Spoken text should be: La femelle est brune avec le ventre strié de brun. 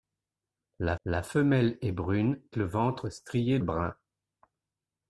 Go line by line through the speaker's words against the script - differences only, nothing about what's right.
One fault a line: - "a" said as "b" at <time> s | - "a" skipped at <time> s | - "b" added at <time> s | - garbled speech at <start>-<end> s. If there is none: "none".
- "la" added at 1.0 s
- "avec" skipped at 2.4 s
- "de" skipped at 3.6 s